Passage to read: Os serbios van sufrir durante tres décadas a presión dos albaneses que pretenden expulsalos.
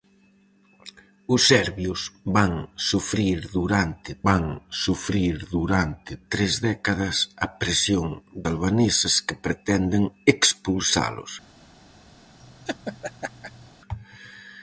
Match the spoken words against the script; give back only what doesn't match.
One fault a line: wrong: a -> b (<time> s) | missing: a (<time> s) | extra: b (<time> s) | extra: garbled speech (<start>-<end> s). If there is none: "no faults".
extra: van sufrir durante (4.3 s)
missing: dos (8.1 s)